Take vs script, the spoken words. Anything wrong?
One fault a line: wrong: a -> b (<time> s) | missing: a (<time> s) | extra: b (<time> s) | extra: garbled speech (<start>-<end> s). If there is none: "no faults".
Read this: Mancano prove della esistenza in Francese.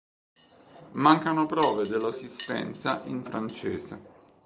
no faults